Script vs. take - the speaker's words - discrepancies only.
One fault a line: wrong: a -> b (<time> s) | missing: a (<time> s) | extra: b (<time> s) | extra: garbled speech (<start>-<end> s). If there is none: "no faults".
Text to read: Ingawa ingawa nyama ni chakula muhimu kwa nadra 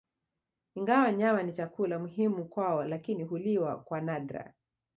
missing: ingawa (1.1 s)
extra: kwao lakini huliwa (2.5 s)